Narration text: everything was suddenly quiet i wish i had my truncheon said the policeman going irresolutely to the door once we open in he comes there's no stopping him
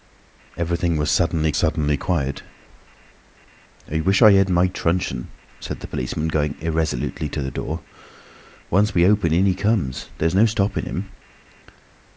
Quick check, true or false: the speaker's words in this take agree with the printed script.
false